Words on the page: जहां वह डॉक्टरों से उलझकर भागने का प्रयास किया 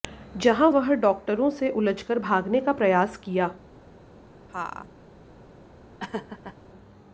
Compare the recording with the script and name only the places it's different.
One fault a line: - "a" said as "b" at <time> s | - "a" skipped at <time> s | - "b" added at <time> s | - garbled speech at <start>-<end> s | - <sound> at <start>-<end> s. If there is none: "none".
- laugh at 4.5-4.9 s
- laugh at 6.0-6.6 s